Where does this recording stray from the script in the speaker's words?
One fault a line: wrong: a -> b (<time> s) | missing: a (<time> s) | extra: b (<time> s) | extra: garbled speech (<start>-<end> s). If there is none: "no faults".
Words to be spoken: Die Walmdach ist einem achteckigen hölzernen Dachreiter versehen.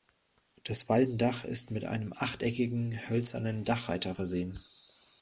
wrong: Die -> Das (0.6 s)
extra: mit (1.7 s)